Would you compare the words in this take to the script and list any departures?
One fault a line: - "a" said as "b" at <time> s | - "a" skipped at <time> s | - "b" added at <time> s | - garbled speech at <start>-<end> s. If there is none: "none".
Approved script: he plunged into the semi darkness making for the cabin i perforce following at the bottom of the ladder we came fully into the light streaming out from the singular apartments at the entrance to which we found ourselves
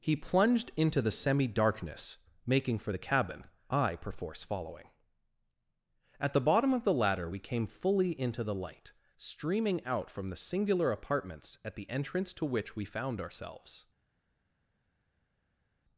none